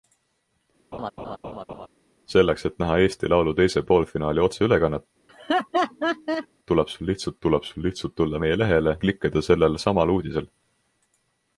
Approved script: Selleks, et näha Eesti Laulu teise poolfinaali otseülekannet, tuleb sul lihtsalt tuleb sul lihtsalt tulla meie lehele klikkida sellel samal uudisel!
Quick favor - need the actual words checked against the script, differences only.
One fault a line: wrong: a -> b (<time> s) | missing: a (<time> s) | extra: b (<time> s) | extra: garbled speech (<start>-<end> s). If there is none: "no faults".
no faults